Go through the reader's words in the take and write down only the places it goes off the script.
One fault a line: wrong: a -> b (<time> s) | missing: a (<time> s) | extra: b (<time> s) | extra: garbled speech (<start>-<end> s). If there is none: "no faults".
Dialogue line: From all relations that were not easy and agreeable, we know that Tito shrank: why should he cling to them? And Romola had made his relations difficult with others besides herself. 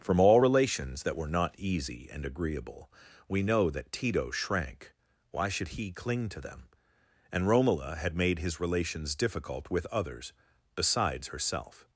no faults